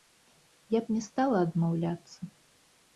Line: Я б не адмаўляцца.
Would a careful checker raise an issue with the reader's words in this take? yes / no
yes